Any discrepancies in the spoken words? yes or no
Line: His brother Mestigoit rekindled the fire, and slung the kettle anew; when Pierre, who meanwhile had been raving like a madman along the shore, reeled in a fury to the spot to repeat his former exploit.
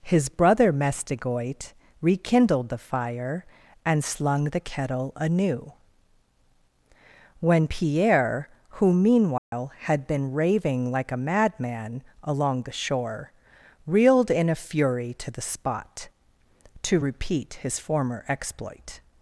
no